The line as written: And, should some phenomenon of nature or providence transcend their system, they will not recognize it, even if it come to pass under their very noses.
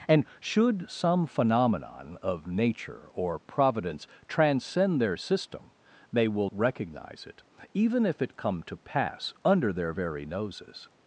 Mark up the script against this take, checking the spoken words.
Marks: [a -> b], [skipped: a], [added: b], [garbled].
And, should some phenomenon of nature or providence transcend their system, they will [skipped: not] recognize it, even if it come to pass under their very noses.